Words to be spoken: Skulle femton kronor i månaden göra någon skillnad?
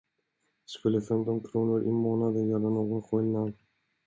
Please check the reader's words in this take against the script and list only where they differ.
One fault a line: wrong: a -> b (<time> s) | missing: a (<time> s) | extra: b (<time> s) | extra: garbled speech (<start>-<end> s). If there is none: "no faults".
no faults